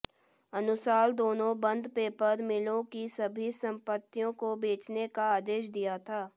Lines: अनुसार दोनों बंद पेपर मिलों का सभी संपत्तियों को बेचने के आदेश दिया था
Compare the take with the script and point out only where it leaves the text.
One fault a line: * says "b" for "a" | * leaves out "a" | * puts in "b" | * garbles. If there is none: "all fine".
* says "की" for "का"
* says "का" for "के"